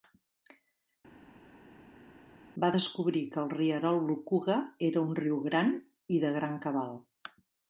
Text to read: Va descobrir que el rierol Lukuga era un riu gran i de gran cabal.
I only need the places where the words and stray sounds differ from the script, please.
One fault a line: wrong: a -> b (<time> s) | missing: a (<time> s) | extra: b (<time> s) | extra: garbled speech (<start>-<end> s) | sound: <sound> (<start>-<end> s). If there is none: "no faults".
no faults